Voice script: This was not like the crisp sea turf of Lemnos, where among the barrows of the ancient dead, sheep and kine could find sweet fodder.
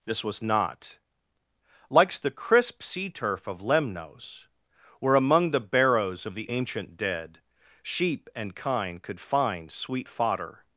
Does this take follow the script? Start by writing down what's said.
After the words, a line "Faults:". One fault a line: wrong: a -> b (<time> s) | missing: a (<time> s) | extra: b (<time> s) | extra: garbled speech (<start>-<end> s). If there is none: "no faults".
This was not likes the crisp sea turf of Lemnos, where among the barrows of the ancient dead, sheep and kine could find sweet fodder.
Faults:
wrong: like -> likes (1.9 s)